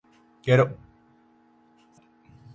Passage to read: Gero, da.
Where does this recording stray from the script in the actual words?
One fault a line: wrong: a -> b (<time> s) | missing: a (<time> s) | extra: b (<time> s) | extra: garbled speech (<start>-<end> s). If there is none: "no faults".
no faults